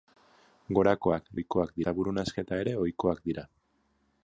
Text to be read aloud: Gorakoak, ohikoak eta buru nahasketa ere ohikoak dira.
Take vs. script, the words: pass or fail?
pass